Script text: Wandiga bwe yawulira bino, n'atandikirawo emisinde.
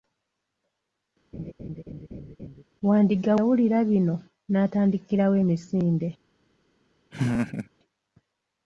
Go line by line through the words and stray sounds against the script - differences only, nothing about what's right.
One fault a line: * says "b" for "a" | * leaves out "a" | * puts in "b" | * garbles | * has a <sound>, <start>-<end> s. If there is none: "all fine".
* has a laugh, 1.3-2.6 s
* leaves out "bwe"
* has a laugh, 7.1-7.7 s